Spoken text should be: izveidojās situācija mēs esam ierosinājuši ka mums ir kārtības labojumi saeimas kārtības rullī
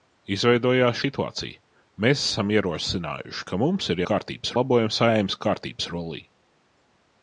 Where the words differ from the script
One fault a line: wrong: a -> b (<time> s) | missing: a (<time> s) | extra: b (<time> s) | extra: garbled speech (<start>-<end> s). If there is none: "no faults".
no faults